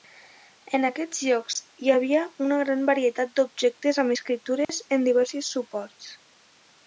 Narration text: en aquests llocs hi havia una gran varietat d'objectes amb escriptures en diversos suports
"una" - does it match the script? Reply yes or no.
yes